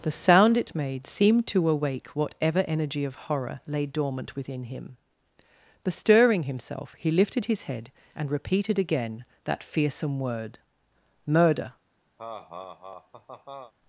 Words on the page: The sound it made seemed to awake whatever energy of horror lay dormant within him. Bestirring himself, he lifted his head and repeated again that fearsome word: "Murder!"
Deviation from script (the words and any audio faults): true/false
true